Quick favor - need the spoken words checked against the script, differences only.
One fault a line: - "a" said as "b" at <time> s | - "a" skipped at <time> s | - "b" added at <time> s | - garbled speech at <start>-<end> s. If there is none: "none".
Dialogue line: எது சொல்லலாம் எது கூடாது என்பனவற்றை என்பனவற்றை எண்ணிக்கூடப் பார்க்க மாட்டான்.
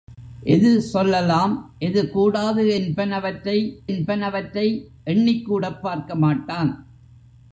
none